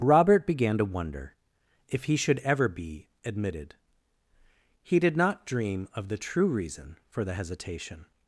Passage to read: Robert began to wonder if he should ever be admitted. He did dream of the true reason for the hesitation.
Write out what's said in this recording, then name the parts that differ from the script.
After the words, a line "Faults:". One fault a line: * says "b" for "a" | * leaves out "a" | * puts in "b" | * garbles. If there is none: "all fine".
Robert began to wonder if he should ever be admitted. He did not dream of the true reason for the hesitation.
Faults:
* puts in "not"